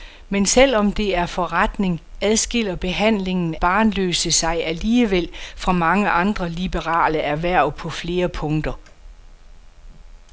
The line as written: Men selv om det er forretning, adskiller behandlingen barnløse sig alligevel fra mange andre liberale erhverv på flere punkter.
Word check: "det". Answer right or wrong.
right